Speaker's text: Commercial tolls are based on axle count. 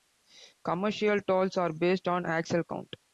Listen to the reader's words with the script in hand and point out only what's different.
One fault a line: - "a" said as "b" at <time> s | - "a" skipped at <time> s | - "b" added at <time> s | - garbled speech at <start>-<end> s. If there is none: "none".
none